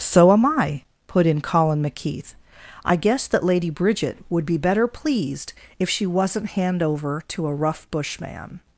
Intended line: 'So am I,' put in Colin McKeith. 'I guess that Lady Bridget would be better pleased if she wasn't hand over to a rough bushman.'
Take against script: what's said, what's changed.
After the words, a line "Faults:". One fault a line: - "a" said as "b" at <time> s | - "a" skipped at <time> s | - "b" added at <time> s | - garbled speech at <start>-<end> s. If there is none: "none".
'So am I,' put in Colin McKeith. 'I guess that Lady Bridget would be better pleased if she wasn't hand over to a rough bushman.'
Faults:
none